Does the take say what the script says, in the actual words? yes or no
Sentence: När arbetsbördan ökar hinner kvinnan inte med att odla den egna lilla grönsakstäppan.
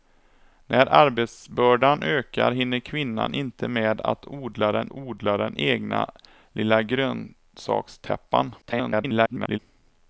no